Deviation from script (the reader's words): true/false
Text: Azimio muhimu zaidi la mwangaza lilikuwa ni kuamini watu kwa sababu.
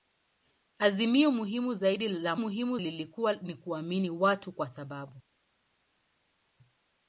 true